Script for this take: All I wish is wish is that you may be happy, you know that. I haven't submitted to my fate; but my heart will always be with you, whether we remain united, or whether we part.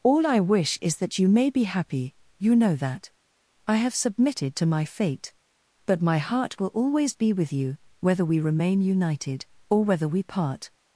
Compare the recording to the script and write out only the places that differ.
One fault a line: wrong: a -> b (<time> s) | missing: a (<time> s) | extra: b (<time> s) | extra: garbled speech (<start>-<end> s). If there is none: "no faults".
missing: wish is (1.0 s)
wrong: haven't -> have (3.8 s)